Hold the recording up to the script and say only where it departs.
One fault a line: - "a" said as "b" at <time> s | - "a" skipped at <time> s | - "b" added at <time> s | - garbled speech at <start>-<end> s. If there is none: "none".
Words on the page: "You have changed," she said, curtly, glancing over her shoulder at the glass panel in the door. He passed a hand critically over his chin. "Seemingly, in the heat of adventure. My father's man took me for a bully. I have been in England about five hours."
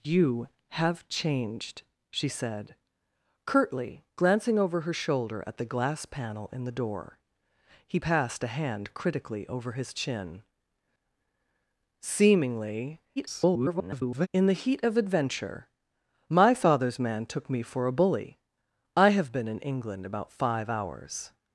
- garbled speech at 13.2-14.3 s